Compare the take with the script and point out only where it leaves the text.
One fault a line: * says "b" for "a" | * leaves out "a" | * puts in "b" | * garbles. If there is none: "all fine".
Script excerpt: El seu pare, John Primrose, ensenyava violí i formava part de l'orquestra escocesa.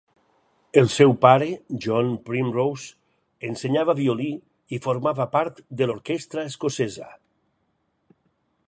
all fine